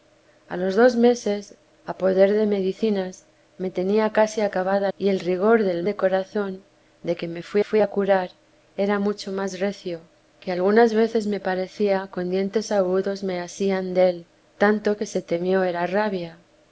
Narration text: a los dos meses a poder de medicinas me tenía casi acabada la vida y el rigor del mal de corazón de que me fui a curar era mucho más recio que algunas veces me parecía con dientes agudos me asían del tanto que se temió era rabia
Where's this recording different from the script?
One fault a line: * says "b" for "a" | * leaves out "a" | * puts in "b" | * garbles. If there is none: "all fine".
* leaves out "la vida"
* leaves out "mal"
* puts in "fui"